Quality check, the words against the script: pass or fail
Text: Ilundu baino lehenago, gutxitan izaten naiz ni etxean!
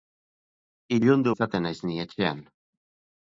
fail